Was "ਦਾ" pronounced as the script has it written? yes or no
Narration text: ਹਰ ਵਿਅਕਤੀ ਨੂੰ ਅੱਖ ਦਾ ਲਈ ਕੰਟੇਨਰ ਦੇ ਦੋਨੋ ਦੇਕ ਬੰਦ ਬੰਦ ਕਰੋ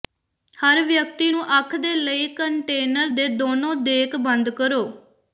no